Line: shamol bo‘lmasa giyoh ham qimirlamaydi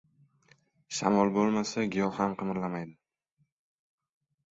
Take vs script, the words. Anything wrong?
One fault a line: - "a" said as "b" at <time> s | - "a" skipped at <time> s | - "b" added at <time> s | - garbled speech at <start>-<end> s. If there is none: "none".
none